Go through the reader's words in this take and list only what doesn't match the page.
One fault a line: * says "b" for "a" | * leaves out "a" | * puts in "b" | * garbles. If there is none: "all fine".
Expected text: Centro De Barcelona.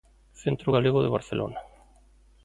* puts in "Galego"